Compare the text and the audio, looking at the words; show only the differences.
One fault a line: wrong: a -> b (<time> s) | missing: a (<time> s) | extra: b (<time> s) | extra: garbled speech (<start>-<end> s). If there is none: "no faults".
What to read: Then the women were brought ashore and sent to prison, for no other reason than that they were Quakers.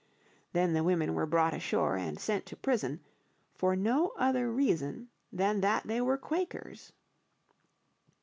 no faults